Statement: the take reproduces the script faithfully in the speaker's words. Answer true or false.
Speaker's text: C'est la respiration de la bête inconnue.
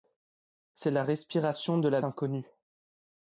false